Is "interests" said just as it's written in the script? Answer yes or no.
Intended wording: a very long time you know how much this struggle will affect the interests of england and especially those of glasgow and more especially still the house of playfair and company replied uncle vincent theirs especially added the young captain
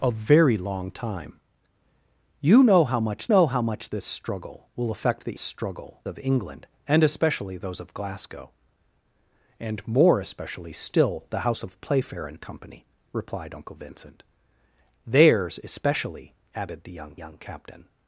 no